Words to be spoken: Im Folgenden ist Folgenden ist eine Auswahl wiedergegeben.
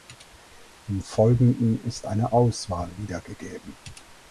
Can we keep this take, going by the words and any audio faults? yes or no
no